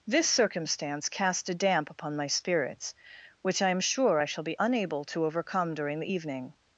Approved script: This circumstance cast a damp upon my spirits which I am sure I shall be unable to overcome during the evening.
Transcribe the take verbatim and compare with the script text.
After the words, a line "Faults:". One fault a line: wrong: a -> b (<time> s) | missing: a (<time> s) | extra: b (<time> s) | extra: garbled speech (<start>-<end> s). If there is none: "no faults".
This circumstance cast a damp upon my spirits which I am sure I shall be unable to overcome during the evening.
Faults:
no faults